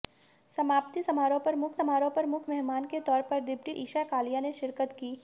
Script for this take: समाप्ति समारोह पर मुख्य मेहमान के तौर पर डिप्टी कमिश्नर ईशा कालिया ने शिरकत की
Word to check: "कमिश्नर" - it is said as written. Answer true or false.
false